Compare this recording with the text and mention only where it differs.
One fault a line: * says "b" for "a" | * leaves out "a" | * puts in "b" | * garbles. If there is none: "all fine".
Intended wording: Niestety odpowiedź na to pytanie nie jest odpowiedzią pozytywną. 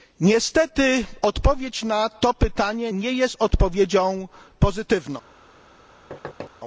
all fine